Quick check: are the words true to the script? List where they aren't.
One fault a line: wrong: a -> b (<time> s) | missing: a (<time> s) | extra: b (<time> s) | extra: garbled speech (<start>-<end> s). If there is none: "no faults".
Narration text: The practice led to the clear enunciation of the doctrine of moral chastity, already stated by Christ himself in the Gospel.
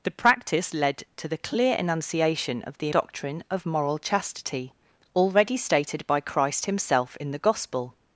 no faults